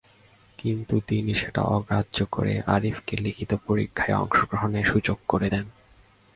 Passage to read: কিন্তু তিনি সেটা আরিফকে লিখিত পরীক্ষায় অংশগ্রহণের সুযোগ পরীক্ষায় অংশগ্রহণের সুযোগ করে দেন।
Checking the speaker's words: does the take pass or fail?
fail